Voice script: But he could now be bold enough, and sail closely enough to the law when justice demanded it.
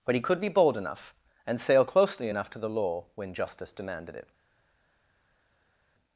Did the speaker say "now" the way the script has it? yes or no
no